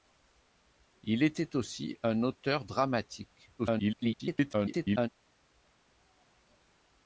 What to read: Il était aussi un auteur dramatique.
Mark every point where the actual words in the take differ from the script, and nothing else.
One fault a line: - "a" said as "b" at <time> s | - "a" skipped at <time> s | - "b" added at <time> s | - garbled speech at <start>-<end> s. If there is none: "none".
- garbled speech at 3.6-5.1 s